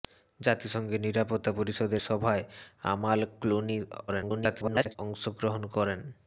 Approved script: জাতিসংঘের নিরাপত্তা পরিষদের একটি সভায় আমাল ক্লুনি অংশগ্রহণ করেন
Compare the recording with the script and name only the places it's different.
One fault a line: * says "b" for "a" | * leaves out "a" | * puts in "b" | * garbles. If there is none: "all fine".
* leaves out "একটি"
* garbles